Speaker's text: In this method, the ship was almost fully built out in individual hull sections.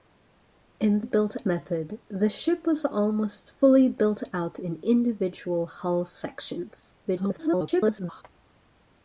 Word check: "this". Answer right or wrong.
wrong